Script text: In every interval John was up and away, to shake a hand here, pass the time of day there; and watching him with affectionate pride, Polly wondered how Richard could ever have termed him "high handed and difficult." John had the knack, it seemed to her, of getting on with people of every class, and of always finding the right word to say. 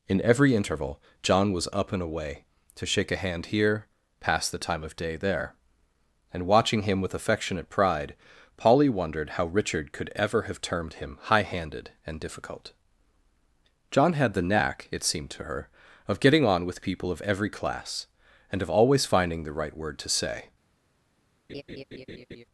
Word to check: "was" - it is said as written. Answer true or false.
true